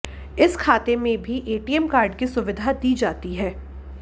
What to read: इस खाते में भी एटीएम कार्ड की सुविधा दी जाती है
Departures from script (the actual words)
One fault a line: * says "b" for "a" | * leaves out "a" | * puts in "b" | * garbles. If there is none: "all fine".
all fine